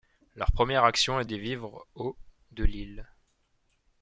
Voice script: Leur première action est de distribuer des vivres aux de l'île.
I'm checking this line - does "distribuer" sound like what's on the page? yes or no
no